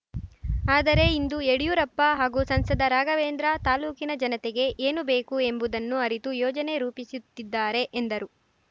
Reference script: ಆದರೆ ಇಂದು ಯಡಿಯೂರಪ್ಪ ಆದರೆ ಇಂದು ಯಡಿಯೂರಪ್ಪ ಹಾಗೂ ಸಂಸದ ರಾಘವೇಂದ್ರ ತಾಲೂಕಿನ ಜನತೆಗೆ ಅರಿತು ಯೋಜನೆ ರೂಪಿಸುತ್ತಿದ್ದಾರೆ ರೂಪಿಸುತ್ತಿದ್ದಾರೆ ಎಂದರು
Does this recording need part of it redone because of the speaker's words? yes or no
yes